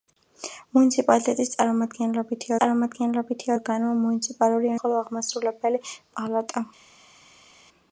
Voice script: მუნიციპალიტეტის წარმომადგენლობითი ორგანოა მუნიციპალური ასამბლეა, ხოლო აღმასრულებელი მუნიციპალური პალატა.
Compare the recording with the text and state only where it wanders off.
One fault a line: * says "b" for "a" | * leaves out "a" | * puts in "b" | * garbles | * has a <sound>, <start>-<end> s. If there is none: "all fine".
* puts in "წარმომადგენლობითი"
* leaves out "ასამბლეა"
* leaves out "მუნიციპალური"